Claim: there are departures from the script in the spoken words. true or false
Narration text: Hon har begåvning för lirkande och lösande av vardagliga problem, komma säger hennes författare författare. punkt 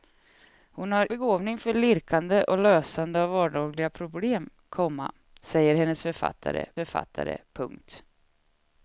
false